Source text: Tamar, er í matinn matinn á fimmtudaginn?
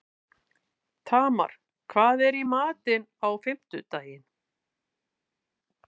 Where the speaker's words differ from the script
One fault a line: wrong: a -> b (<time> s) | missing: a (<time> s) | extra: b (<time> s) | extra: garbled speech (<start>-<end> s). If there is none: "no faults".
extra: hvað (1.9 s)
missing: matinn (3.1 s)